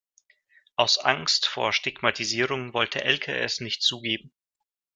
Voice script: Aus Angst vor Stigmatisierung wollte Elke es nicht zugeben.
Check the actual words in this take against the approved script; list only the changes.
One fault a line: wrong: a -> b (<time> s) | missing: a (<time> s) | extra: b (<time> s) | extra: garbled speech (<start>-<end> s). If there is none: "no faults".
no faults